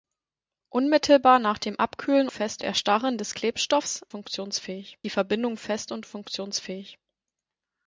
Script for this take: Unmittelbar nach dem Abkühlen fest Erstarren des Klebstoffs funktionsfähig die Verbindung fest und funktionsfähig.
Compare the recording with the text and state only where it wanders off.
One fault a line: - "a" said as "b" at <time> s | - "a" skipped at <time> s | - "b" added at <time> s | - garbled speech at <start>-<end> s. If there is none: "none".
none